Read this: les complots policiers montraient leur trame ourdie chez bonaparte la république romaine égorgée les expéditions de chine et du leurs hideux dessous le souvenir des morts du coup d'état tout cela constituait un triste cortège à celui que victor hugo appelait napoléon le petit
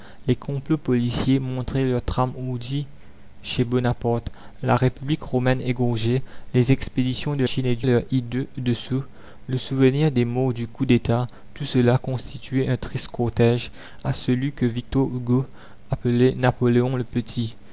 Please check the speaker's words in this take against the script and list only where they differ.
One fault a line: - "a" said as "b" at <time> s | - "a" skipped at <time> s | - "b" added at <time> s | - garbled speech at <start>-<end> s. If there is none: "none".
none